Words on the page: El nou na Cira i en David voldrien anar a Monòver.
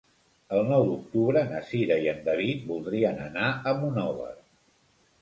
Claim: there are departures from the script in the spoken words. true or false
true